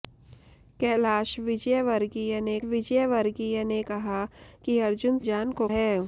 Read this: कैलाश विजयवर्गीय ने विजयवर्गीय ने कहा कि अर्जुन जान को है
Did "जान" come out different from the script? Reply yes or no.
no